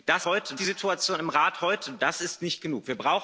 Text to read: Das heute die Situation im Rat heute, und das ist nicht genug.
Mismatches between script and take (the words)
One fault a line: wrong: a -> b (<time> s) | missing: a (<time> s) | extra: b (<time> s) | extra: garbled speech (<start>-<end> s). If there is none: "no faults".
no faults